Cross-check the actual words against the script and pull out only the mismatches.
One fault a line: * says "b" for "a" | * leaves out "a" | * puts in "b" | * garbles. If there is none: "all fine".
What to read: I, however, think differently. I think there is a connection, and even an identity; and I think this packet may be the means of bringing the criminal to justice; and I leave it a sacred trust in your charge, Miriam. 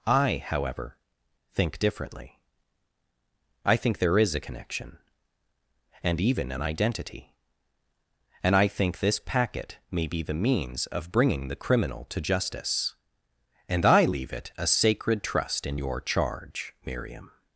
all fine